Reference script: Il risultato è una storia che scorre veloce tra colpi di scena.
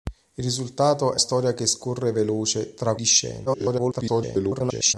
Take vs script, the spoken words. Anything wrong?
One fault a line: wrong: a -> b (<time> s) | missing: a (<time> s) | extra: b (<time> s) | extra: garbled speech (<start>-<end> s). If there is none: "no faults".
missing: una (1.2 s)
missing: colpi (3.0 s)
extra: garbled speech (3.5-4.9 s)